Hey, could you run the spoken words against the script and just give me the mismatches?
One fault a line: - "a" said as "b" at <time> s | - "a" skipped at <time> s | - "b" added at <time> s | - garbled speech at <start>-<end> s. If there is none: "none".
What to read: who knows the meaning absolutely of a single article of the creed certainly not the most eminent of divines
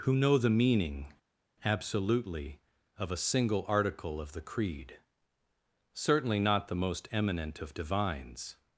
- "knows" said as "know" at 0.1 s